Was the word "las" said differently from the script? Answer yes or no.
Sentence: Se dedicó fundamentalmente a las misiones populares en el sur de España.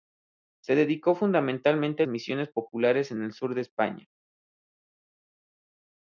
yes